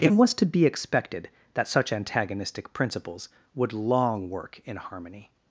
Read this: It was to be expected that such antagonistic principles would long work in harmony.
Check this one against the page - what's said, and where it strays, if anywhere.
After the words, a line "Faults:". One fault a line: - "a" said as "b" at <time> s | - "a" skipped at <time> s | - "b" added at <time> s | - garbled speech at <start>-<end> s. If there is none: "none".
It was to be expected that such antagonistic principles would long work in harmony.
Faults:
none